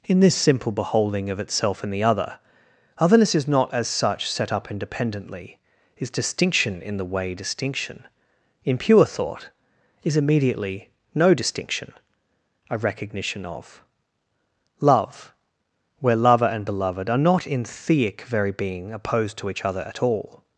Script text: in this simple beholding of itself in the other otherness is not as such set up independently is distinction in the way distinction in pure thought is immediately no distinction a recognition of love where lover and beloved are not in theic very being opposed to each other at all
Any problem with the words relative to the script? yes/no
no